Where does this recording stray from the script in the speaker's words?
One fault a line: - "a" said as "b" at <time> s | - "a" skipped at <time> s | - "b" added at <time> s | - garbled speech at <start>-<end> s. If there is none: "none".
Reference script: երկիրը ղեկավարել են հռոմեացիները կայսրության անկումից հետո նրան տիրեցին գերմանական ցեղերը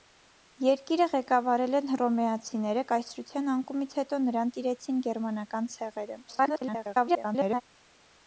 - garbled speech at 6.3-7.6 s